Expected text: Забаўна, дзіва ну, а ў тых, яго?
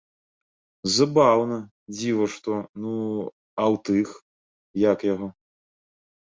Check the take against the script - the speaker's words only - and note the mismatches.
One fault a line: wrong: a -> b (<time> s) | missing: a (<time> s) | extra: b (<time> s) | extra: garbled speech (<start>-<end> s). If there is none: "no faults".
extra: што (2.4 s)
extra: як (4.9 s)